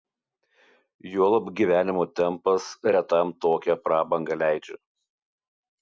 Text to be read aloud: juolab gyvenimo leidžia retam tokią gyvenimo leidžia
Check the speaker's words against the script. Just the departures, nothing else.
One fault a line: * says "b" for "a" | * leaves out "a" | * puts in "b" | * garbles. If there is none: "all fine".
* says "tempas" for "leidžia"
* says "prabangą" for "gyvenimo"